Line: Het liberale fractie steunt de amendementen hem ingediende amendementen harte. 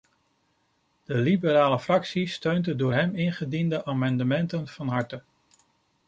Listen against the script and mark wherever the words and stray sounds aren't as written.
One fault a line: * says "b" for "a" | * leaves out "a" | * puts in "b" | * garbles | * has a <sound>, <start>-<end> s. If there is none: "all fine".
* says "De" for "Het"
* says "door" for "amendementen"
* puts in "van"